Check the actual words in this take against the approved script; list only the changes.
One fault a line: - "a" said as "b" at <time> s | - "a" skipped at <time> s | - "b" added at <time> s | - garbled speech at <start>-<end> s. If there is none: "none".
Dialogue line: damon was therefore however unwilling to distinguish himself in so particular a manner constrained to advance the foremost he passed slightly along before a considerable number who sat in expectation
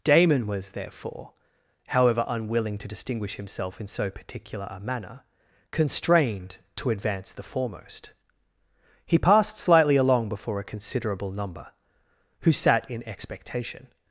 none